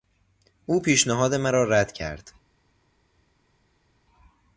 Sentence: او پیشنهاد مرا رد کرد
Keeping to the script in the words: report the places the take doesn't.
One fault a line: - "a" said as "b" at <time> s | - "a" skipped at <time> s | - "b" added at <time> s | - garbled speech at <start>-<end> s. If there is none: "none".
none